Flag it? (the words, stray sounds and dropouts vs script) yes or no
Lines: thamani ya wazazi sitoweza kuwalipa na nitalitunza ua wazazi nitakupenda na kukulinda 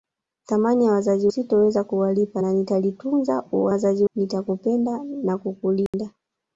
yes